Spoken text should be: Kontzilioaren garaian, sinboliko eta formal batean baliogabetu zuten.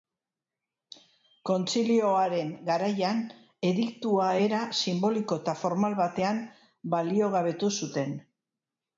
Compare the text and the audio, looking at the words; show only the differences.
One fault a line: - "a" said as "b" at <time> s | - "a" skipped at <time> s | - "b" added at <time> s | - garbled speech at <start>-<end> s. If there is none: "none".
- "ediktua era" added at 3.7 s